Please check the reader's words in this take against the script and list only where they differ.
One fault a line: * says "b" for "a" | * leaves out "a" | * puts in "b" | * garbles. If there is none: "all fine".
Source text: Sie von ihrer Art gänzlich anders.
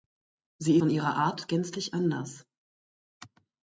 all fine